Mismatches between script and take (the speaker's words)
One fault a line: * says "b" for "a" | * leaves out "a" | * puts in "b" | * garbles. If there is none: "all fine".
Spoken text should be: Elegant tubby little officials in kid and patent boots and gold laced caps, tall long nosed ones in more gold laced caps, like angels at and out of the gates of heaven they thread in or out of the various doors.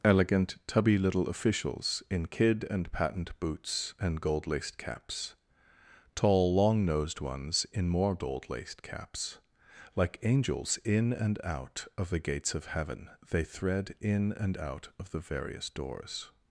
* says "in" for "at"
* says "and" for "or"